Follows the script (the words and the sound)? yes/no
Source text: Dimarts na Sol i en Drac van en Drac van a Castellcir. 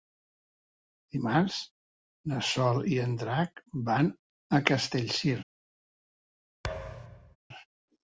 no